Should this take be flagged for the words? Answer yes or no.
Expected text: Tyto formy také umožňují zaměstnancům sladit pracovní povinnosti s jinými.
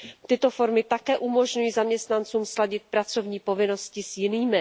no